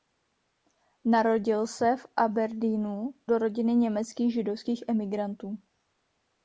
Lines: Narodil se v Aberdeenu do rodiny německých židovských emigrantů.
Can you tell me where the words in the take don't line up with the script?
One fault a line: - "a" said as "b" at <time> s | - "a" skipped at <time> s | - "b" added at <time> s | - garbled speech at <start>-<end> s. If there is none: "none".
none